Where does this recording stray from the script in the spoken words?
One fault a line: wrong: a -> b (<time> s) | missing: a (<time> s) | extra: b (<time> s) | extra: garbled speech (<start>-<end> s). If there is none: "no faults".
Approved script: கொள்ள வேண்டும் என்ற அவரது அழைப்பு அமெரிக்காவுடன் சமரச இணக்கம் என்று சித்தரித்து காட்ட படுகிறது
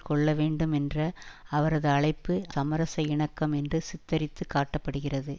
missing: அமெரிக்காவுடன் (2.4 s)